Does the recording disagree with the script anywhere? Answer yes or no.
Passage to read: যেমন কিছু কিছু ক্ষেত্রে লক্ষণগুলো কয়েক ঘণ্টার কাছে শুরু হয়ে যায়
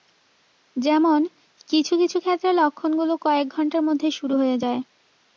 yes